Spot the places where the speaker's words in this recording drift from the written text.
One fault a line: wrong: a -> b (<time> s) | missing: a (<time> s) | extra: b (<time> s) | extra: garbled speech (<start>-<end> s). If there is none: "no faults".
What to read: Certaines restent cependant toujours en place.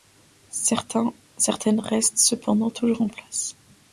no faults